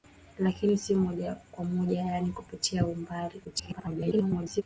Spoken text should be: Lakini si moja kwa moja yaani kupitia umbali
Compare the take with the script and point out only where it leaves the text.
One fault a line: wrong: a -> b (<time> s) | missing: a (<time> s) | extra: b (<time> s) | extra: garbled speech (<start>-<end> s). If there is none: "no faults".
extra: garbled speech (3.4-4.6 s)